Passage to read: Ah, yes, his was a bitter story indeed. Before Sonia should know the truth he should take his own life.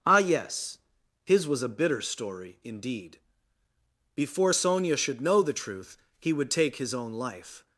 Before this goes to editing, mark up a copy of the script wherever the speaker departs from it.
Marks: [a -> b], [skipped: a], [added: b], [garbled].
Ah, yes, his was a bitter story indeed. Before Sonia should know the truth he [should -> would] take his own life.